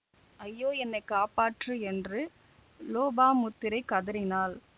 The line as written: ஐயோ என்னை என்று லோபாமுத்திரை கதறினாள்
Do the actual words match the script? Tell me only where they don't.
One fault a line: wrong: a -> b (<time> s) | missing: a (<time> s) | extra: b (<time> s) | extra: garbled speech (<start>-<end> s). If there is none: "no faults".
extra: காப்பாற்று (1.1 s)